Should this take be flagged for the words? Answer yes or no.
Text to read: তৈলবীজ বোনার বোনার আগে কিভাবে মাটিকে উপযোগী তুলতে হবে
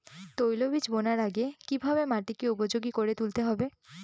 yes